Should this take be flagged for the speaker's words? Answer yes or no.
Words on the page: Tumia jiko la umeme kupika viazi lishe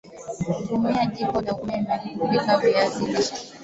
no